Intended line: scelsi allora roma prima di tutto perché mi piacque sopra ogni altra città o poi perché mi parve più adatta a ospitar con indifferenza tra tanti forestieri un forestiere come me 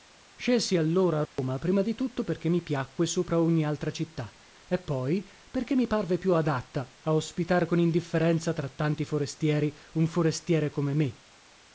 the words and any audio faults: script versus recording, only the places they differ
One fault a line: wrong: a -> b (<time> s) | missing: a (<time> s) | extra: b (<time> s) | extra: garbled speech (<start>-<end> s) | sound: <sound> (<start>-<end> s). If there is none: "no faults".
sound: dropout (1.3-1.4 s)
wrong: o -> e (4.7 s)